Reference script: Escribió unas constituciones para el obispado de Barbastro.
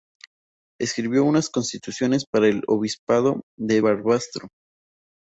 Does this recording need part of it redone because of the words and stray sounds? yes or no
no